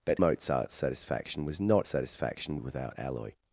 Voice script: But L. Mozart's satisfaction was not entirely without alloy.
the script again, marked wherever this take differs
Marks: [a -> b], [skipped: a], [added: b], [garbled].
But [skipped: L.] Mozart's satisfaction was not [entirely -> satisfaction] without alloy.